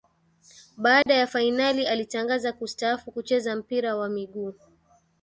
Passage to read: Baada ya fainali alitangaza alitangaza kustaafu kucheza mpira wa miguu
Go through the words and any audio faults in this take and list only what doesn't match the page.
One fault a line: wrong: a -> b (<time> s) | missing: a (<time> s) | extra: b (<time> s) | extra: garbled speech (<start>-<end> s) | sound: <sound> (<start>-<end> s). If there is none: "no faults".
sound: dropout (1.0-1.1 s)
missing: alitangaza (2.5 s)